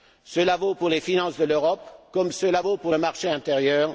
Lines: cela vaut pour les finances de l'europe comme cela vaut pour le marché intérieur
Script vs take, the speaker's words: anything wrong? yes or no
no